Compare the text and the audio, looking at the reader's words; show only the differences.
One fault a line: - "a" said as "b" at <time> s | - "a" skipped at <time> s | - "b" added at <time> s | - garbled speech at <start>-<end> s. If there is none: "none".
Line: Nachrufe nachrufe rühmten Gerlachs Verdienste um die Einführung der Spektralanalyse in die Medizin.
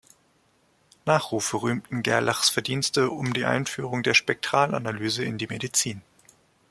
- "nachrufe" skipped at 1.6 s